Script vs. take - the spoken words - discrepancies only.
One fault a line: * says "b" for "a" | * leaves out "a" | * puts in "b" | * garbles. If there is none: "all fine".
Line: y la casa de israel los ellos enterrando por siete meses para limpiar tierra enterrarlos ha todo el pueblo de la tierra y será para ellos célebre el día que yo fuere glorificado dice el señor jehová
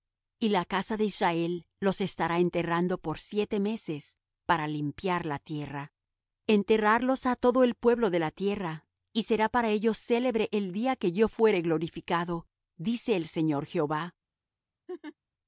* says "estará" for "ellos"
* puts in "la"